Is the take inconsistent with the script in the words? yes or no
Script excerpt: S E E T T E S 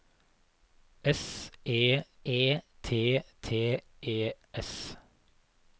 no